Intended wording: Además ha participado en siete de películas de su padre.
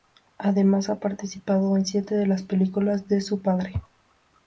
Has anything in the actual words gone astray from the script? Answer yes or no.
yes